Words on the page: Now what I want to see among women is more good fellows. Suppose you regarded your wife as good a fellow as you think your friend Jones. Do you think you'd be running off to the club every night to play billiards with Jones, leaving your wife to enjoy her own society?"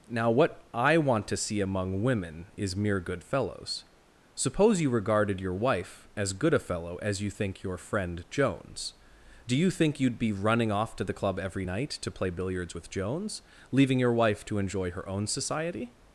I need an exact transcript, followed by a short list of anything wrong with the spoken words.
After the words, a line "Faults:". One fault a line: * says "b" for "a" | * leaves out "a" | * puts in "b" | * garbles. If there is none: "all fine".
Now what I want to see among women is mere good fellows. Suppose you regarded your wife as good a fellow as you think your friend Jones. Do you think you'd be running off to the club every night to play billiards with Jones, leaving your wife to enjoy her own society?"
Faults:
* says "mere" for "more"